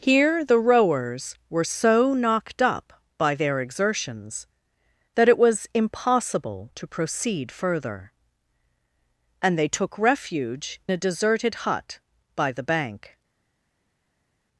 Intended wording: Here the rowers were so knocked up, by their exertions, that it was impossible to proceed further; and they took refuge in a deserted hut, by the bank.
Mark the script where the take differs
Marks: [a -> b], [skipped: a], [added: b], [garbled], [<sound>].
Here the rowers were so knocked up, by their exertions, that it was impossible to proceed further; and they took refuge [skipped: in] a deserted hut, by the bank.